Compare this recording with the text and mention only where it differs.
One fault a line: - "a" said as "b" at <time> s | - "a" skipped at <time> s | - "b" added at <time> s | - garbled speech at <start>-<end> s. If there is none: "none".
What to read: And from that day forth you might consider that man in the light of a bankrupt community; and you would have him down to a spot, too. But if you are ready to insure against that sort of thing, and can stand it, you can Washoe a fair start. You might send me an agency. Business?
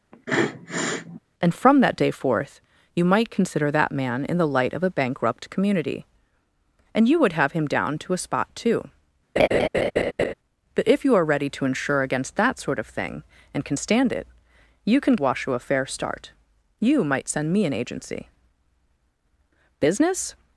none